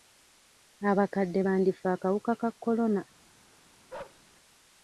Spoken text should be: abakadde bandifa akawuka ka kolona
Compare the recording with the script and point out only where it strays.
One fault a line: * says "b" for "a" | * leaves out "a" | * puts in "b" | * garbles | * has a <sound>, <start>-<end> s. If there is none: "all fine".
* has a bark, 3.9-4.2 s